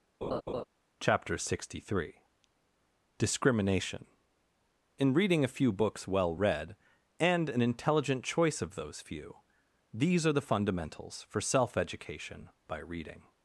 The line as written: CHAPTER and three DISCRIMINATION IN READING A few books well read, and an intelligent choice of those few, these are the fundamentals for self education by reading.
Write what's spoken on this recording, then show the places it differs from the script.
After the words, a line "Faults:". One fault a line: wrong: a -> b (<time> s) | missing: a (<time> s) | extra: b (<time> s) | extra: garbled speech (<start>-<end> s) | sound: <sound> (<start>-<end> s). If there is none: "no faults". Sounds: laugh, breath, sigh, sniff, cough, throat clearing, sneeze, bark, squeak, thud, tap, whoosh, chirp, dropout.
CHAPTER sixty three DISCRIMINATION IN READING A few books well read, and an intelligent choice of those few, these are the fundamentals for self education by reading.
Faults:
sound: laugh (0.2-0.6 s)
wrong: and -> sixty (1.4 s)